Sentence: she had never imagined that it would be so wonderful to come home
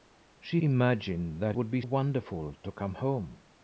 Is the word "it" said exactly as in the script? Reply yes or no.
no